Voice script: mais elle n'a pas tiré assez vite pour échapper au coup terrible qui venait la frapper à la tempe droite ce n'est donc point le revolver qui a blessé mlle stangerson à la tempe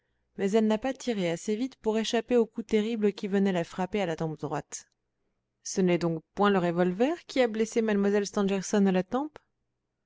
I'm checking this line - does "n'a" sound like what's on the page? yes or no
yes